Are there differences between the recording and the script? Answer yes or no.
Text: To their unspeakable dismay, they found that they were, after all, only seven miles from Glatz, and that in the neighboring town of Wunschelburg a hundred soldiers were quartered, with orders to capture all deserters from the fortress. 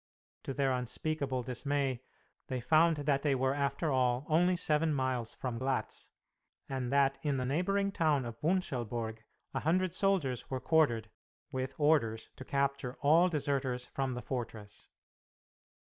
no